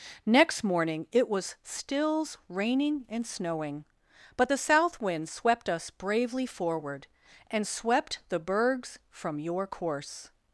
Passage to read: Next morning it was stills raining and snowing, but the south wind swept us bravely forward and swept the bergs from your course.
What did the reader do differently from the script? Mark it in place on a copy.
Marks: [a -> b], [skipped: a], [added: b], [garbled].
Next morning it was stills raining and snowing, but the south wind swept us bravely forward and swept the bergs from your course.